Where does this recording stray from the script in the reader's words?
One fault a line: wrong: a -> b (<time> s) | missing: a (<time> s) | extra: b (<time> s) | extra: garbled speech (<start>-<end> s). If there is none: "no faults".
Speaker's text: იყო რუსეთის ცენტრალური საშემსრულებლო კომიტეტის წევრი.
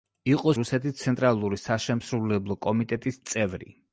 no faults